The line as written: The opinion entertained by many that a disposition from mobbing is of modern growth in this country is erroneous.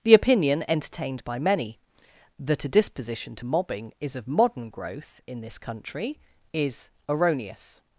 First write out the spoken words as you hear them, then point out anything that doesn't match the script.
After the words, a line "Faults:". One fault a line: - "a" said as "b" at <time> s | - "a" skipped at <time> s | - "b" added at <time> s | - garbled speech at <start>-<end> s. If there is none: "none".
The opinion entertained by many that a disposition to mobbing is of modern growth in this country is erroneous.
Faults:
- "from" said as "to" at 3.4 s